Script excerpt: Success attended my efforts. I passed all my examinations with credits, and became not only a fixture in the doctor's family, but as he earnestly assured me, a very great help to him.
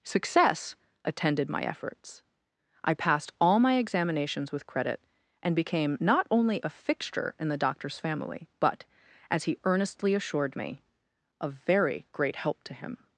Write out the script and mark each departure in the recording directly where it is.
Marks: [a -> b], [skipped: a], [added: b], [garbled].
Success attended my efforts. I passed all my examinations with [credits, -> credit] and became not only a fixture in the doctor's family, but as he earnestly assured me, a very great help to him.